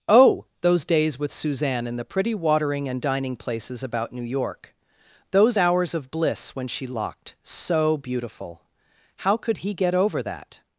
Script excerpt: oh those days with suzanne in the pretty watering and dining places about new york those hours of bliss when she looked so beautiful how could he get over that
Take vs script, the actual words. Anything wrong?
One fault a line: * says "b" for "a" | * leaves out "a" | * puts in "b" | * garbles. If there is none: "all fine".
* says "locked" for "looked"